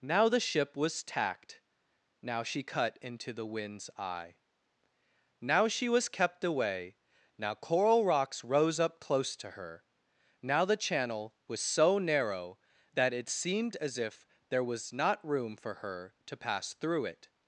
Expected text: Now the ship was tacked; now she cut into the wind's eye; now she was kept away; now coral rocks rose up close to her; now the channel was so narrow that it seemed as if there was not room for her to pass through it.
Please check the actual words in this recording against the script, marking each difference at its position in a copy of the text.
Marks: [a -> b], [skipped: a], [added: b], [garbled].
Now the ship was tacked; now she cut into the wind's eye; now she was kept away; now coral rocks rose up close to her; now the channel was so narrow that it seemed as if there was not room for her to pass through it.